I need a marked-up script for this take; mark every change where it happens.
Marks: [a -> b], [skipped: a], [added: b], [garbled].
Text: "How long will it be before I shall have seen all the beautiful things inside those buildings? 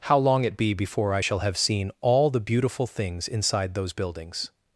"How long [skipped: will] it be before I shall have seen all the beautiful things inside those buildings?